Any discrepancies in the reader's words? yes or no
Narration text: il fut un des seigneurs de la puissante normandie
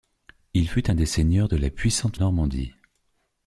no